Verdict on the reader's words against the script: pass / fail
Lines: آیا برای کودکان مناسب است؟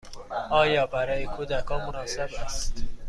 pass